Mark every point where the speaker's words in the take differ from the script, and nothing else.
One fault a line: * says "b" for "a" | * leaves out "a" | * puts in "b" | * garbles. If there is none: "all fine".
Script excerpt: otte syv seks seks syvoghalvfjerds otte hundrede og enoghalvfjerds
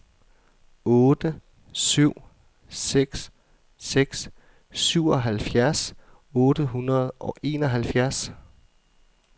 all fine